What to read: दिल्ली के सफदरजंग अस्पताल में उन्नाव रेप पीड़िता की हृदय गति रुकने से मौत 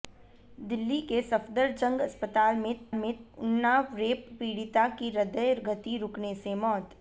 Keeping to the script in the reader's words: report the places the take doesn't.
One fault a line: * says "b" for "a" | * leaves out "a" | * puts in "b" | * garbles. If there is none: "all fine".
* puts in "में"